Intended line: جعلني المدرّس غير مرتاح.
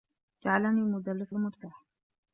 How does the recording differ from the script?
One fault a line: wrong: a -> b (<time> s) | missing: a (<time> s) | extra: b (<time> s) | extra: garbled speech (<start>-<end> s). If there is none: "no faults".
missing: غير (1.4 s)